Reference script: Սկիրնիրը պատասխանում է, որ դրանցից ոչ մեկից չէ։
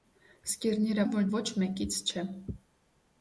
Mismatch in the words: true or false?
true